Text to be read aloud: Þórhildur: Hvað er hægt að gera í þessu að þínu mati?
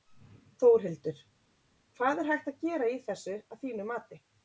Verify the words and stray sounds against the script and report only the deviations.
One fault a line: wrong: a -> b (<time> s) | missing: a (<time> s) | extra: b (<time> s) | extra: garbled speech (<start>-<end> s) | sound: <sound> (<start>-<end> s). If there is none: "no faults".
no faults